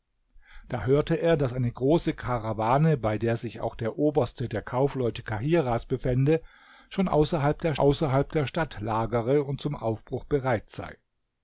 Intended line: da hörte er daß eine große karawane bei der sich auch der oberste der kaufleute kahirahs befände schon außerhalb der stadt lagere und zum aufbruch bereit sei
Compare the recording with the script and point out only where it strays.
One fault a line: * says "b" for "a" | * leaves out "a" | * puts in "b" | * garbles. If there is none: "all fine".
* puts in "außerhalb der"